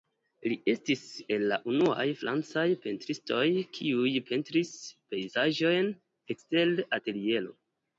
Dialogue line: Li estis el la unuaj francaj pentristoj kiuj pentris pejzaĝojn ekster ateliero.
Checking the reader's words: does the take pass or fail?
pass